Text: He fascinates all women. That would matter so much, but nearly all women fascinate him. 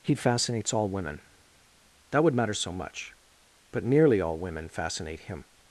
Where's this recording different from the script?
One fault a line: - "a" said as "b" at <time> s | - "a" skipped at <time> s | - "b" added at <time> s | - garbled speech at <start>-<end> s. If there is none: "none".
none